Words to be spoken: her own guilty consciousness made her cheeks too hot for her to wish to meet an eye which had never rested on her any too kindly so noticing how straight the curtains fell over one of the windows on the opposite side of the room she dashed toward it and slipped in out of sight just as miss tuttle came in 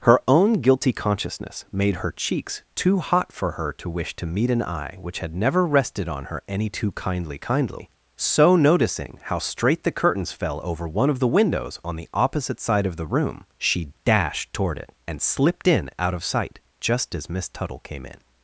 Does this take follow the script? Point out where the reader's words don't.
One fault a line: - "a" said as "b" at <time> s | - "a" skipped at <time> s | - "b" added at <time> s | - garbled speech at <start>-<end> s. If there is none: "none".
- "kindly" added at 7.4 s